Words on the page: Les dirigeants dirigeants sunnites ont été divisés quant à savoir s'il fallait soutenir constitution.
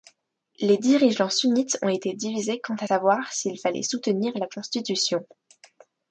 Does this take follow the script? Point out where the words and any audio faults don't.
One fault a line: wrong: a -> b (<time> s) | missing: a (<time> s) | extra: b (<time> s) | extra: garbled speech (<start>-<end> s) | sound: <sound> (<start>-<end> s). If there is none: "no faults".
missing: dirigeants (1.3 s)
extra: la (4.4 s)